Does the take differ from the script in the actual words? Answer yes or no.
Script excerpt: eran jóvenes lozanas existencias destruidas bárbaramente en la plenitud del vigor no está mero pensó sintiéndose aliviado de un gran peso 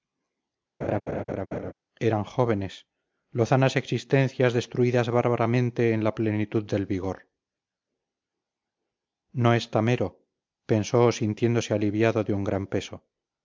no